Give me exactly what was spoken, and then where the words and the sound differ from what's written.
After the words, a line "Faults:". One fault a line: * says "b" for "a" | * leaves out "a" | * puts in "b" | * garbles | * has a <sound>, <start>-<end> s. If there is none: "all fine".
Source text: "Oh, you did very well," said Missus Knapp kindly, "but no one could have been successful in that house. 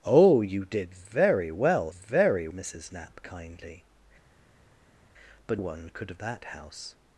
"Oh, you did very well," very Missus Knapp kindly, "but one could have that house.
Faults:
* says "very" for "said"
* leaves out "no"
* leaves out "been successful in"